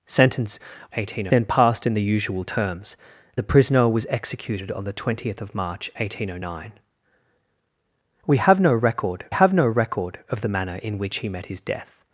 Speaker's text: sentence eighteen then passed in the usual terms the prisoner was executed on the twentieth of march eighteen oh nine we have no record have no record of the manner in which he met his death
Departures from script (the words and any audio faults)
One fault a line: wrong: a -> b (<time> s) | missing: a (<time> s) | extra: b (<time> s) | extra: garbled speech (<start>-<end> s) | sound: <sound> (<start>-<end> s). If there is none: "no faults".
no faults